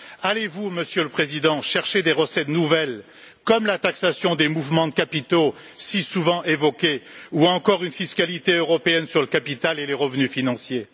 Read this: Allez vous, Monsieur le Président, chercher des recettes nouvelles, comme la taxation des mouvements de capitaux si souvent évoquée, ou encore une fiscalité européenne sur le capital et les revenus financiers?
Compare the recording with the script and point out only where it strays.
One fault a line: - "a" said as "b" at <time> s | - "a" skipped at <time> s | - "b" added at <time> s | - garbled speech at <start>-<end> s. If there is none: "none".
none